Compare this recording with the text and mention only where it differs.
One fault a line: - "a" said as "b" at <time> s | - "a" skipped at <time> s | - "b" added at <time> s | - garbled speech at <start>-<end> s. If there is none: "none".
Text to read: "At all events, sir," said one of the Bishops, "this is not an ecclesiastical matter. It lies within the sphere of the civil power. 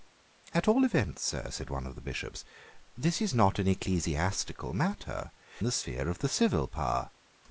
- "It lies within" skipped at 5.3 s